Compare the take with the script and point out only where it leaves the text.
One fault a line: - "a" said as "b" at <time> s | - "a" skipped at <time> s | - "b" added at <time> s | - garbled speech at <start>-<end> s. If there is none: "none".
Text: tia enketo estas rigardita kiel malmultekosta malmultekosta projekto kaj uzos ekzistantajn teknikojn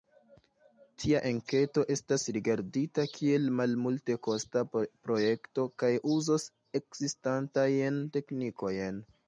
- "malmultekosta" skipped at 4.7 s